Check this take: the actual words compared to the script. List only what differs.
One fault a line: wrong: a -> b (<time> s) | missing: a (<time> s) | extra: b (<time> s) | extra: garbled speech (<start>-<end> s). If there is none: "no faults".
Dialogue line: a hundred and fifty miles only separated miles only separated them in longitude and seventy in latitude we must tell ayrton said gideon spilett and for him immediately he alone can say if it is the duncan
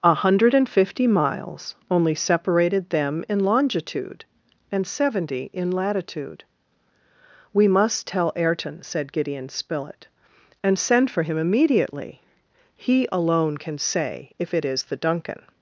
missing: miles only separated (2.9 s)
extra: send (10.8 s)